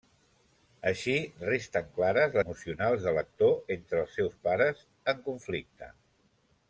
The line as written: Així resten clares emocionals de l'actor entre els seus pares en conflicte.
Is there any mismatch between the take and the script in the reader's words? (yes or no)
no